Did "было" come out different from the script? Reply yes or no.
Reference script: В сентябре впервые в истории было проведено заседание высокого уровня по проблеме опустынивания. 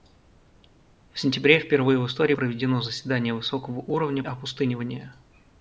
yes